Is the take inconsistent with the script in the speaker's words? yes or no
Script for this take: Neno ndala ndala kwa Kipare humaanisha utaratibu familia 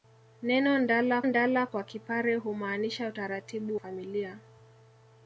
no